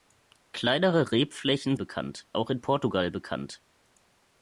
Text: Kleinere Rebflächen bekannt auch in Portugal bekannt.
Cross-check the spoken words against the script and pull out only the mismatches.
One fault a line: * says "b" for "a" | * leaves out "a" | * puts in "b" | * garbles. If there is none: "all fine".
all fine